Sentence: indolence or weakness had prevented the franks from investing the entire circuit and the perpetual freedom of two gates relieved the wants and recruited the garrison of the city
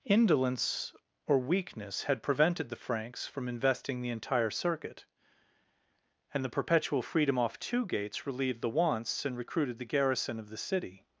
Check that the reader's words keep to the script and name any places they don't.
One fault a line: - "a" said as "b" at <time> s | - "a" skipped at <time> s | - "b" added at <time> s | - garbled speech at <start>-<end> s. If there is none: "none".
- "of" said as "off" at 7.4 s